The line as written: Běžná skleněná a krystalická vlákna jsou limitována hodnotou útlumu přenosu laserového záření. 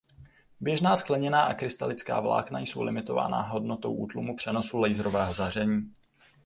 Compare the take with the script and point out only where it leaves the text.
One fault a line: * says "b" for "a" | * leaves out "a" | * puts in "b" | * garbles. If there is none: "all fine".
all fine